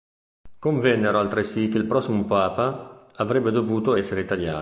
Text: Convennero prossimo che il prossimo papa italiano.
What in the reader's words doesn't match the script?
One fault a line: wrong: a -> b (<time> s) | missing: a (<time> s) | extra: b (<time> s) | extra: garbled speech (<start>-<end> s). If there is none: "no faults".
wrong: prossimo -> altresì (1.2 s)
extra: avrebbe dovuto essere (3.1 s)